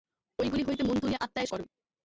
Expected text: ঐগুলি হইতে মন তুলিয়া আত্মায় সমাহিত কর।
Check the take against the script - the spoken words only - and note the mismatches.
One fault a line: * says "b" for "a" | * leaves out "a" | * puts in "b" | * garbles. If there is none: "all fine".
* leaves out "সমাহিত"